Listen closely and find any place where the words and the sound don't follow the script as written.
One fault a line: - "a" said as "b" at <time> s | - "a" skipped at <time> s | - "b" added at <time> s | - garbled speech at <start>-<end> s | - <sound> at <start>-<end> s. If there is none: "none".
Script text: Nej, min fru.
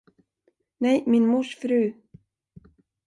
- "mors" added at 1.3 s